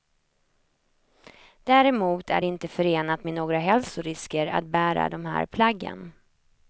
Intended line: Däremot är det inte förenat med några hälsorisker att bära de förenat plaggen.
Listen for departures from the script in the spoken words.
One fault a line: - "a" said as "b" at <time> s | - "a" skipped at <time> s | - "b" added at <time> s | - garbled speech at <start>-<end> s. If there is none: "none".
- "förenat" said as "här" at 5.2 s